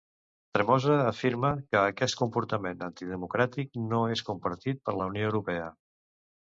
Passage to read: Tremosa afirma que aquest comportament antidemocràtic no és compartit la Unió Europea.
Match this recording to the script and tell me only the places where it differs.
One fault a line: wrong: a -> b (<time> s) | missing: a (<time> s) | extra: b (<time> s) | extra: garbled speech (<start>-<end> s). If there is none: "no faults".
extra: per (4.9 s)